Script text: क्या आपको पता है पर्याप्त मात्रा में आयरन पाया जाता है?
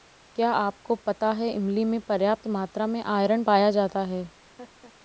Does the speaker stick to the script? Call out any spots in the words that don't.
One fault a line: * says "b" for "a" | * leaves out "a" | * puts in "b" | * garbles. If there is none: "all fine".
* puts in "इमली में"